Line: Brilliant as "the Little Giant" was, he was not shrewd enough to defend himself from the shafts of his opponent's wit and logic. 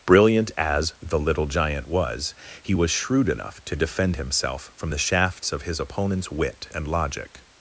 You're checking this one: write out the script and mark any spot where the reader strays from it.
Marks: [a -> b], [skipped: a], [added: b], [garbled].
Brilliant as "the Little Giant" was, he was [skipped: not] shrewd enough to defend himself from the shafts of his opponent's wit and logic.